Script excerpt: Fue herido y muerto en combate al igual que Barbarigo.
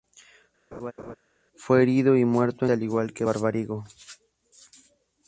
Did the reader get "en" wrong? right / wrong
wrong